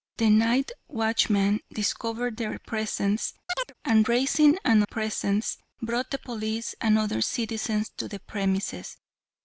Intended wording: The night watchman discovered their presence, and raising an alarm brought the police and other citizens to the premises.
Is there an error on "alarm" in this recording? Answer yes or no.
yes